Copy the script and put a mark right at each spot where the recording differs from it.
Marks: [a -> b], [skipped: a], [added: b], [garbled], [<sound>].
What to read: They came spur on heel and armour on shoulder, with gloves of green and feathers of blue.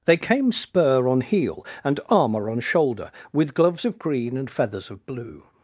They came spur on heel and armour on shoulder, with gloves of green and feathers of blue.